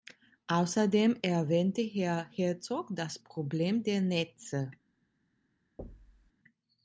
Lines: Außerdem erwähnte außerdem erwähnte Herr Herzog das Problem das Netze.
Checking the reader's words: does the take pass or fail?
fail